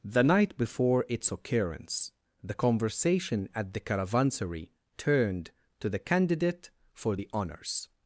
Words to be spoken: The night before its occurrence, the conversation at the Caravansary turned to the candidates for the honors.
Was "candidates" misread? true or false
true